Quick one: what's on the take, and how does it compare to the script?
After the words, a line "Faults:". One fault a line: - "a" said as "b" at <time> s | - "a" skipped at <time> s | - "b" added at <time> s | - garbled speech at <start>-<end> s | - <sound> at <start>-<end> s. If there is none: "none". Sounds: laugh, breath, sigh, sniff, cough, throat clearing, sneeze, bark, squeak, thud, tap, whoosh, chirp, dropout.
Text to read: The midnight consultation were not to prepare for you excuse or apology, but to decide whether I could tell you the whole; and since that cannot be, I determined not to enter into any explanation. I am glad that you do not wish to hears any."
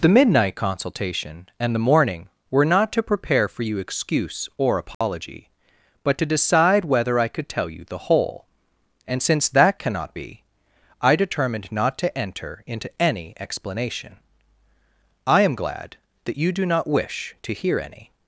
The midnight consultation and the morning, were not to prepare for you excuse or apology, but to decide whether I could tell you the whole; and since that cannot be, I determined not to enter into any explanation. I am glad that you do not wish to hear any."
Faults:
- "and the morning" added at 1.6 s
- dropout at 4.9-5.0 s
- "hears" said as "hear" at 17.5 s